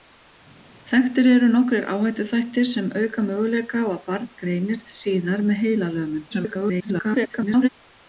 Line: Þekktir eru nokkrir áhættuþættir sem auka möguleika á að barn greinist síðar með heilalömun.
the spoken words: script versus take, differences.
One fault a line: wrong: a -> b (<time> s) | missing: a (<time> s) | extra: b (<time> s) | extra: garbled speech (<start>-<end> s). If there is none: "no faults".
extra: garbled speech (6.3-7.7 s)